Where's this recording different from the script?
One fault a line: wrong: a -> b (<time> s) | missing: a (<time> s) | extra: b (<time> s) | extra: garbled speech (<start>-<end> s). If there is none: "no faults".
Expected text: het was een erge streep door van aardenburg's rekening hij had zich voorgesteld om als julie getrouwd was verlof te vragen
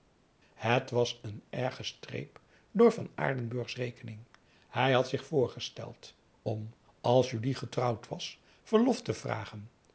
no faults